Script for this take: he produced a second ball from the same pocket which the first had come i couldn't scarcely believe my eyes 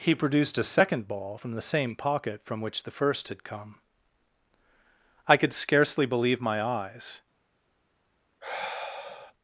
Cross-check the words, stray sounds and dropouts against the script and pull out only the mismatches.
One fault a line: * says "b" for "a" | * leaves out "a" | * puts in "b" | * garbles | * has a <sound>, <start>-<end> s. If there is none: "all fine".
* puts in "from"
* says "could" for "couldn't"
* has a sigh, 8.4-9.3 s